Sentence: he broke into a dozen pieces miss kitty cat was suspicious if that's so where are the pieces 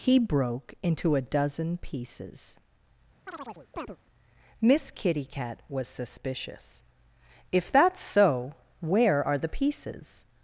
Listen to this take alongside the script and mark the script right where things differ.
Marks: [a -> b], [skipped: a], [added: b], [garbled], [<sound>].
he broke into a dozen pieces [chirp] miss kitty cat was suspicious if that's so where are the pieces